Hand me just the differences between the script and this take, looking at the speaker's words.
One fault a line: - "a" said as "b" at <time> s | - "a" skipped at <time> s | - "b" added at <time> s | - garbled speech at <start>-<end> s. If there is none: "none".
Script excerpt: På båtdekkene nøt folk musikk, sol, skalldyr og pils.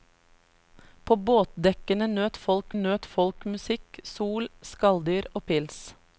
- "nøt folk" added at 2.7 s